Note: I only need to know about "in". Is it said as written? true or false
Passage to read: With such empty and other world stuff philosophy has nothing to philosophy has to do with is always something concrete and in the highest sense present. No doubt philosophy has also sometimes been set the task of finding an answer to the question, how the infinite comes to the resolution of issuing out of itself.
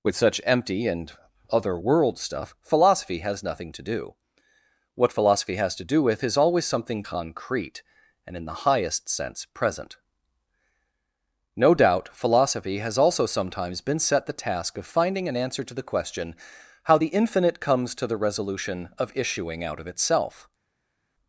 true